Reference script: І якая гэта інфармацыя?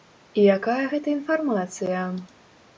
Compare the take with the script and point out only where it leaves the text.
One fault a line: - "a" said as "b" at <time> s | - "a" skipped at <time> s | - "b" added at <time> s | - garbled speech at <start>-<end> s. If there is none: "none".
none